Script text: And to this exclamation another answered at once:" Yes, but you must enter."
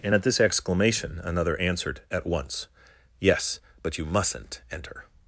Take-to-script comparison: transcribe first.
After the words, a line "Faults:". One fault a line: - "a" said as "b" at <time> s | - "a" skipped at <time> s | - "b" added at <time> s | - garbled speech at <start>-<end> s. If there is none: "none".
And at this exclamation another answered at once:" Yes, but you mustn't enter."
Faults:
- "to" said as "at" at 0.1 s
- "must" said as "mustn't" at 4.0 s